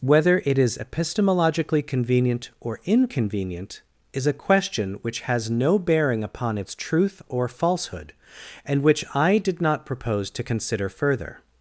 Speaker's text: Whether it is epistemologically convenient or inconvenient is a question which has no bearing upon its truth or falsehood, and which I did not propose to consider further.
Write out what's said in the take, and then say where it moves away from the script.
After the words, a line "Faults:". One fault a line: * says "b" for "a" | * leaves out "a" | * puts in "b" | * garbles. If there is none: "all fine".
Whether it is epistemologically convenient or inconvenient is a question which has no bearing upon its truth or falsehood, and which I did not propose to consider further.
Faults:
all fine